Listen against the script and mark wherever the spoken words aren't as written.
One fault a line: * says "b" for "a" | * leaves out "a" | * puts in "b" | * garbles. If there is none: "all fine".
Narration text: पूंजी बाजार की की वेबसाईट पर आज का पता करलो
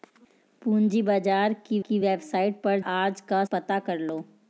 all fine